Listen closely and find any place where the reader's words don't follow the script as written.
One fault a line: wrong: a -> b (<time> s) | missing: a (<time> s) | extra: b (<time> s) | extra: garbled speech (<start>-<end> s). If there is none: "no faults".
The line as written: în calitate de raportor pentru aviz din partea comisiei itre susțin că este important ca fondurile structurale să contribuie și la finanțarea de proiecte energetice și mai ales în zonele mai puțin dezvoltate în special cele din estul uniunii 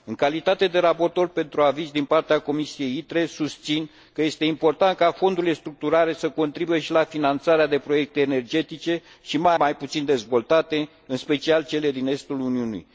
missing: ales în zonele (9.6 s)